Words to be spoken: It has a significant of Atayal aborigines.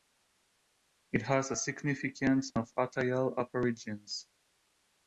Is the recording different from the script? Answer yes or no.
no